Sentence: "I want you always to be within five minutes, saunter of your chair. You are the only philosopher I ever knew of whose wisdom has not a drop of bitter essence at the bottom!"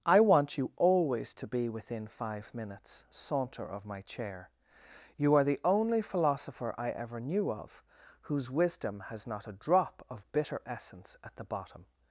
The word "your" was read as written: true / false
false